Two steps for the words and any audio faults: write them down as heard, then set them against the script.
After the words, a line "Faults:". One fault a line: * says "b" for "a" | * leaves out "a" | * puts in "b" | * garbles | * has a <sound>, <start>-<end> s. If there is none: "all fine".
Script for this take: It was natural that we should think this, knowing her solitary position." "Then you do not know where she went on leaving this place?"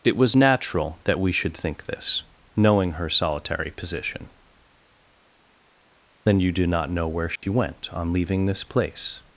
It was natural that we should think this, knowing her solitary position." "Then you do not know where she went on leaving this place?"
Faults:
* has a dropout, 7.4-7.4 s